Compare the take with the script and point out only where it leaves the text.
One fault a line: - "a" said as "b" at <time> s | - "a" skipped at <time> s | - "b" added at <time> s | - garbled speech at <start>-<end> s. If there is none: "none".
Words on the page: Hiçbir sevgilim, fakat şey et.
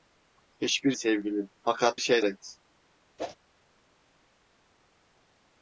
none